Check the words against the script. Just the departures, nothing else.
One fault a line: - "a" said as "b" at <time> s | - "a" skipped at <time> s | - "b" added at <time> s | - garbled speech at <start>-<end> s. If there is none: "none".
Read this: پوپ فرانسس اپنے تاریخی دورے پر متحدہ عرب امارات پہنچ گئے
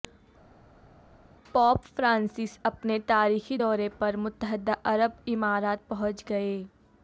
none